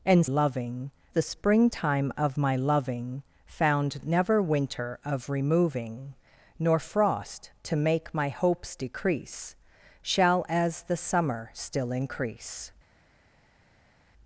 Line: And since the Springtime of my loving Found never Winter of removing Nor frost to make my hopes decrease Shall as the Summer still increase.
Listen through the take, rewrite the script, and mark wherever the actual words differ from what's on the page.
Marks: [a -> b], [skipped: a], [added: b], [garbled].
And [since -> loving] the Springtime of my loving Found never Winter of removing Nor frost to make my hopes decrease Shall as the Summer still increase.